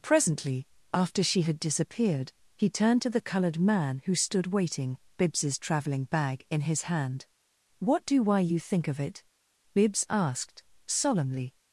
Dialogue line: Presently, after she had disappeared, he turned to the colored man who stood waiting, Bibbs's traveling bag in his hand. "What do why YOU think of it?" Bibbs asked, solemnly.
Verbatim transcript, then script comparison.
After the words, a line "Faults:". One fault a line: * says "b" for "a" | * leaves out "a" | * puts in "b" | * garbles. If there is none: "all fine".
Presently, after she had disappeared, he turned to the colored man who stood waiting, Bibbs's traveling bag in his hand. "What do why YOU think of it?" Bibbs asked, solemnly.
Faults:
all fine